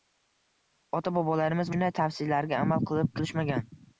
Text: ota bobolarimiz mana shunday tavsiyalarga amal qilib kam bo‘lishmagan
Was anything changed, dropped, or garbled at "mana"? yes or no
yes